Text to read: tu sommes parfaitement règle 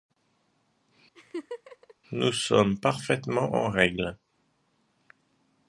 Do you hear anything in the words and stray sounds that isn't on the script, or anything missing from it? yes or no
yes